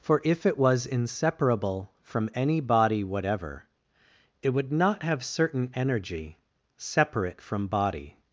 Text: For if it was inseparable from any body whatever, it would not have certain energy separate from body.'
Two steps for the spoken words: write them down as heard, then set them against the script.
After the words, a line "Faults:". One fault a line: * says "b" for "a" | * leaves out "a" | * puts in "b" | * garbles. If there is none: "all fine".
For if it was inseparable from any body whatever, it would not have certain energy separate from body.'
Faults:
all fine